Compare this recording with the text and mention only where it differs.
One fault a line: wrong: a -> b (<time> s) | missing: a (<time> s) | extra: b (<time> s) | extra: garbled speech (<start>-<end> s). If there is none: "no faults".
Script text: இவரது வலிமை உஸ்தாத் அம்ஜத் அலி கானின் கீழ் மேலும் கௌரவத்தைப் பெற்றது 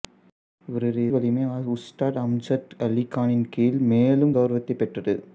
no faults